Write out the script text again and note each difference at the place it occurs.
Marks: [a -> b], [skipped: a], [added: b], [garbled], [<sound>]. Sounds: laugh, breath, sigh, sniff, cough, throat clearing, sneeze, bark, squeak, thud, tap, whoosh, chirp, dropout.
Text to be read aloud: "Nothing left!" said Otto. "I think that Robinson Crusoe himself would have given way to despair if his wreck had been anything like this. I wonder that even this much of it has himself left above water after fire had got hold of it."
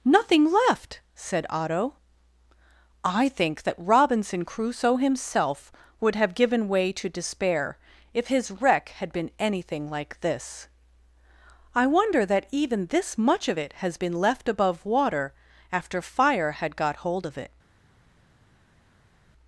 "Nothing left!" said Otto. "I think that Robinson Crusoe himself would have given way to despair if his wreck had been anything like this. I wonder that even this much of it has [himself -> been] left above water after fire had got hold of it."